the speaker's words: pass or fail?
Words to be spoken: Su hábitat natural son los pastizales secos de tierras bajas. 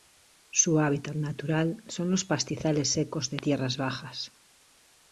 pass